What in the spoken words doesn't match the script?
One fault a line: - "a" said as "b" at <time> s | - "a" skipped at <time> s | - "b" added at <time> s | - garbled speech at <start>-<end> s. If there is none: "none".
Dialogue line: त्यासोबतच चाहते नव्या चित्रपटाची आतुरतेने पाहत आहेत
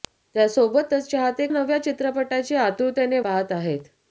none